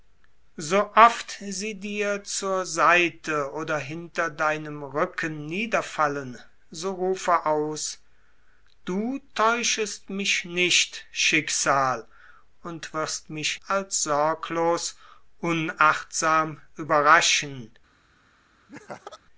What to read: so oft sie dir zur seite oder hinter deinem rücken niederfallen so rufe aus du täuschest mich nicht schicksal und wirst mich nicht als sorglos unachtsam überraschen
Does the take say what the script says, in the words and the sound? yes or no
no